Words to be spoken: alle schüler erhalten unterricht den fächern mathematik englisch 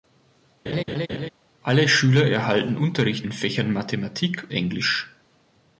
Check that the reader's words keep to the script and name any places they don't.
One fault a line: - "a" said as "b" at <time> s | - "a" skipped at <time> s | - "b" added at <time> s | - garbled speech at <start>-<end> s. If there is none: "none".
none